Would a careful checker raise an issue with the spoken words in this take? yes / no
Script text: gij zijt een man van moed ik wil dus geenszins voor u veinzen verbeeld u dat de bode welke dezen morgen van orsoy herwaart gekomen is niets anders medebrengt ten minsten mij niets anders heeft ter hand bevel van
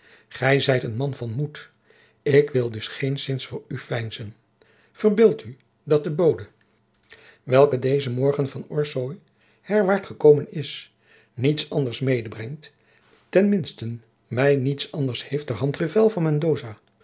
no